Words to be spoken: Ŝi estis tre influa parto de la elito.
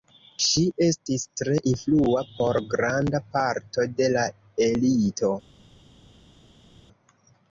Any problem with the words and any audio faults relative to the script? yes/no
yes